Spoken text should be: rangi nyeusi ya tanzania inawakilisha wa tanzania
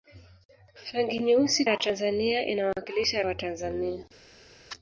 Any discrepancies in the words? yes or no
no